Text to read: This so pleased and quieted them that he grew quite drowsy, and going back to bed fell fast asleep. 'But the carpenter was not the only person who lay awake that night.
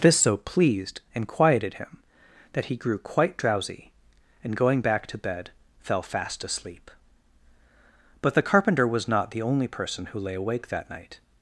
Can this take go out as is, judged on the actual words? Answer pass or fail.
fail